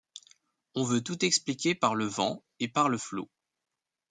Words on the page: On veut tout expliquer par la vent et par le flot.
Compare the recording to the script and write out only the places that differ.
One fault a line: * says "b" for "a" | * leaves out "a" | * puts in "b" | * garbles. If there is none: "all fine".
* says "le" for "la"